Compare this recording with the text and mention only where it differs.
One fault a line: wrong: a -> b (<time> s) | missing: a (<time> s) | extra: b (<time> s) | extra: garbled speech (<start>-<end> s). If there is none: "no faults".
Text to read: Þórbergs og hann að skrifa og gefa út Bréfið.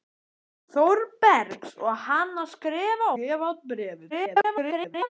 missing: og (3.1 s)
extra: garbled speech (4.1-5.1 s)